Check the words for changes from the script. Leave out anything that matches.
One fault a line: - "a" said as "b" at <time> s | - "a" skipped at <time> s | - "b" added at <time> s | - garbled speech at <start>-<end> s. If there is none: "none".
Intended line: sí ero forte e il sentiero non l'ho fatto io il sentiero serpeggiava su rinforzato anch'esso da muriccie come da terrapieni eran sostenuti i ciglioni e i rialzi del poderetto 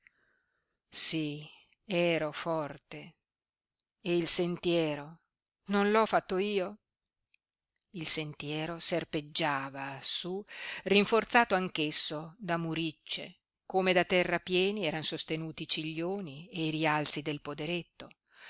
none